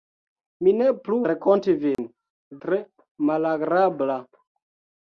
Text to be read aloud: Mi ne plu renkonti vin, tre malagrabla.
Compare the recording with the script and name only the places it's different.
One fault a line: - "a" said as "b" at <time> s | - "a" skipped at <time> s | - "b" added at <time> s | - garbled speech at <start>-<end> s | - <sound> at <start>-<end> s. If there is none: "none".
- dropout at 1.9-2.0 s